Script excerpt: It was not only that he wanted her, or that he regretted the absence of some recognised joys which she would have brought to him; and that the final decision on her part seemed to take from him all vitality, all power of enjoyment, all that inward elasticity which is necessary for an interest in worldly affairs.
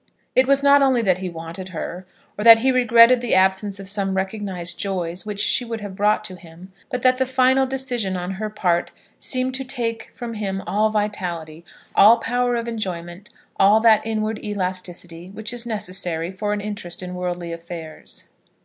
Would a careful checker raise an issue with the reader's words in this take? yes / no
yes